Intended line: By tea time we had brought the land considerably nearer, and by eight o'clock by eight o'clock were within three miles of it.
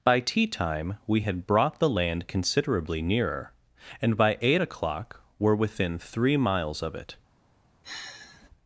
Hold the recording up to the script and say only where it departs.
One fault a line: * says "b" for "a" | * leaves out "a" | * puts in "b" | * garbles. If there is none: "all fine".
* leaves out "by eight o'clock"